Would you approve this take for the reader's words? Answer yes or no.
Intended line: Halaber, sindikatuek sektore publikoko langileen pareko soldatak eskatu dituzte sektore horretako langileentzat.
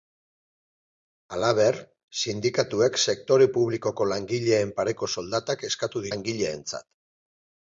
no